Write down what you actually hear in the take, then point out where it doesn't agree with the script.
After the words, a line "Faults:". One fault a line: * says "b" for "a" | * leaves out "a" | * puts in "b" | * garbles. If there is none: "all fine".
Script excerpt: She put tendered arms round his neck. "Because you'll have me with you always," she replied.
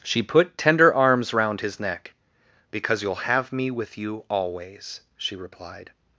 She put tender arms round his neck. "Because you'll have me with you always," she replied.
Faults:
* says "tender" for "tendered"